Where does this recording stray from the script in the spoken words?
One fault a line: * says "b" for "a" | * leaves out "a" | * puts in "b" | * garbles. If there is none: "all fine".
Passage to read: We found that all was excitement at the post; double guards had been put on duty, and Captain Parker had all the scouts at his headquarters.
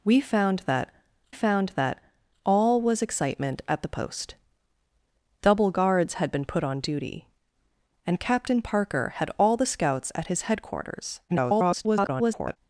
* puts in "found that"
* garbles